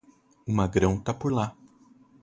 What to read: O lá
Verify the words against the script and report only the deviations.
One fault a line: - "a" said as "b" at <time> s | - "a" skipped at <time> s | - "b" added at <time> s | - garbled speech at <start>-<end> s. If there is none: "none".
- "magrão tá por" added at 0.5 s